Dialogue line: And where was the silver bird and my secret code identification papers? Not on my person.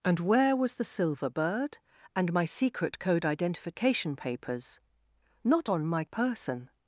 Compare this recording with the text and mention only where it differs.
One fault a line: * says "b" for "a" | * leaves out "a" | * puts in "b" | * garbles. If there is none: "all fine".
all fine